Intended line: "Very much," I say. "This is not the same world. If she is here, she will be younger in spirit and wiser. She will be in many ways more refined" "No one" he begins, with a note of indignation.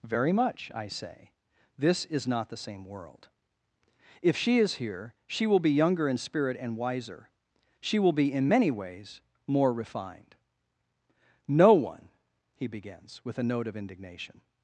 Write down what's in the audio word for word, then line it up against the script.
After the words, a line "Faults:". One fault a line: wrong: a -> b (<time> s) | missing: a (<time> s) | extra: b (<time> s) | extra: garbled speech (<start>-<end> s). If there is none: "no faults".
"Very much," I say. "This is not the same world. If she is here, she will be younger in spirit and wiser. She will be in many ways more refined" "No one" he begins, with a note of indignation.
Faults:
no faults